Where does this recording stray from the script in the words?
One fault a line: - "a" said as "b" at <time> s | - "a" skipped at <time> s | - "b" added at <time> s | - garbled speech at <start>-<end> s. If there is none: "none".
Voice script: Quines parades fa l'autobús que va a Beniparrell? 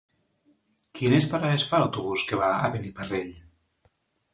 none